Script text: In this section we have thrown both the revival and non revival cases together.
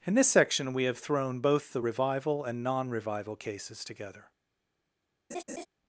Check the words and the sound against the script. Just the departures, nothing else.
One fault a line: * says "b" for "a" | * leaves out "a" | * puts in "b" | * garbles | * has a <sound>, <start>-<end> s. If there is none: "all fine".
* has a laugh, 5.3-5.7 s